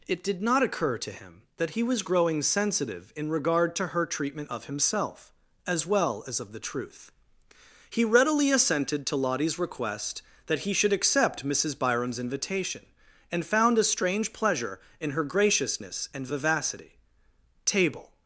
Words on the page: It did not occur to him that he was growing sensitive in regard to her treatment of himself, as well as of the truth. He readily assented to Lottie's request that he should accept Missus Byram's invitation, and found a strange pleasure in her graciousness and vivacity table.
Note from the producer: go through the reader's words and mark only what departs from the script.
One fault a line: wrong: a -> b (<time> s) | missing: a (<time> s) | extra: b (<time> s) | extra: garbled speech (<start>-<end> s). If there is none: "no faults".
no faults